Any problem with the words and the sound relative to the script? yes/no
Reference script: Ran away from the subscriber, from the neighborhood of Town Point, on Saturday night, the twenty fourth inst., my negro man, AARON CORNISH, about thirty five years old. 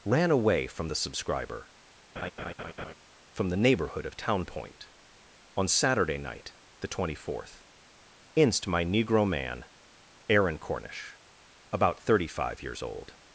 yes